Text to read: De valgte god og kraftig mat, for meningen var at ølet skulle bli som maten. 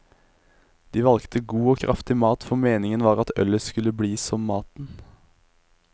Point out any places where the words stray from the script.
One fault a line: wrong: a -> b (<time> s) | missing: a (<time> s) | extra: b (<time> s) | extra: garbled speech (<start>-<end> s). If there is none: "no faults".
no faults